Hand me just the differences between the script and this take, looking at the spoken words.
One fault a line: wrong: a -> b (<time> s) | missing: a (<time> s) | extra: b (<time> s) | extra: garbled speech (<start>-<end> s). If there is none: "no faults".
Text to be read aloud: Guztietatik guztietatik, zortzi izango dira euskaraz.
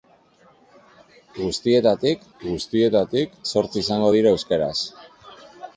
no faults